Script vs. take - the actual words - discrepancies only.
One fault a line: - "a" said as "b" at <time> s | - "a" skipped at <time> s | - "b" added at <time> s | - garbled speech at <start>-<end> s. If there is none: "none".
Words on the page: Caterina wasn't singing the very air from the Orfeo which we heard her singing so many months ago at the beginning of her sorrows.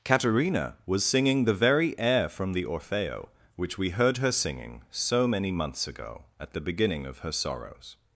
- "wasn't" said as "was" at 0.9 s